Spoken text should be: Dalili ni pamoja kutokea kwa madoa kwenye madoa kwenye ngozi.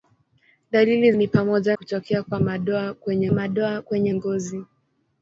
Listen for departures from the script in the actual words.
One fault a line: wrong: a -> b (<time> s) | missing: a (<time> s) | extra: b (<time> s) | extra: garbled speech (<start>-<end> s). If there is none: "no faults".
no faults